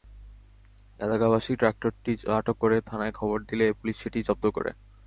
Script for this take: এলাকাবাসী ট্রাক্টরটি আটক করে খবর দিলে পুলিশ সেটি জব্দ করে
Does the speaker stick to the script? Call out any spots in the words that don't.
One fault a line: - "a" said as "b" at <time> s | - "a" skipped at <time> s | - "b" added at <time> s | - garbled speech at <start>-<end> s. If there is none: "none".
- "থানায়" added at 2.9 s